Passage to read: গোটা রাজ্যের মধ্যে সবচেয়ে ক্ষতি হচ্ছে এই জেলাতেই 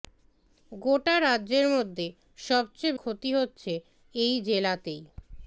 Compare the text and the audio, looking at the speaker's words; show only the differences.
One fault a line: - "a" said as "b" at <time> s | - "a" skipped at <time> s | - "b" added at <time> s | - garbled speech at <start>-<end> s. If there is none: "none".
none